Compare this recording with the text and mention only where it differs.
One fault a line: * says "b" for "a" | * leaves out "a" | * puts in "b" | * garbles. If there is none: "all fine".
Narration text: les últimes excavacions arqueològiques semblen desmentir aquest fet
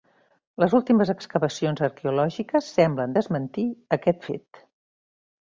all fine